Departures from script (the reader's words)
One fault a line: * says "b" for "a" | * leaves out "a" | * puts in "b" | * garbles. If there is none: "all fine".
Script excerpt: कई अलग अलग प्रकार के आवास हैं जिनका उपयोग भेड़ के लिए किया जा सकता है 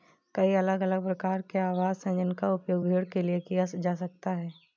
all fine